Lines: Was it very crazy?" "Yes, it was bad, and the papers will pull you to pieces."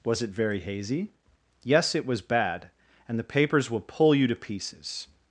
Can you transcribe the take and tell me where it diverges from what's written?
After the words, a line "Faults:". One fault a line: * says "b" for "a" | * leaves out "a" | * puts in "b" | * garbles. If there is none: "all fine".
Was it very hazy?" "Yes, it was bad, and the papers will pull you to pieces."
Faults:
* says "hazy" for "crazy"